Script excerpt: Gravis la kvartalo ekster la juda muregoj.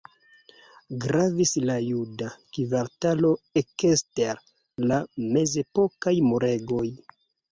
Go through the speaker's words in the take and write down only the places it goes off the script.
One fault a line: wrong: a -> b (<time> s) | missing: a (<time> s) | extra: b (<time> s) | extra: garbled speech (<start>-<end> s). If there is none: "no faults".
extra: juda (1.9 s)
wrong: juda -> mezepokaj (5.4 s)